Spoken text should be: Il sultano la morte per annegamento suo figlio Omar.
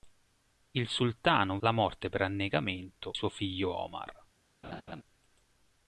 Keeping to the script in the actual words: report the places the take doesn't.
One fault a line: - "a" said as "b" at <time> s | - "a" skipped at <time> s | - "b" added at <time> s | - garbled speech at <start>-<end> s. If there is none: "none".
none